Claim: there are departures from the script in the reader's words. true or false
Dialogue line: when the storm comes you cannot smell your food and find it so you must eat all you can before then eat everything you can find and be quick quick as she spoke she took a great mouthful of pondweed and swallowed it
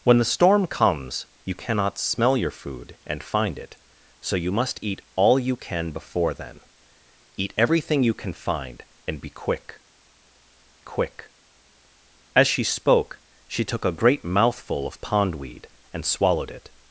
false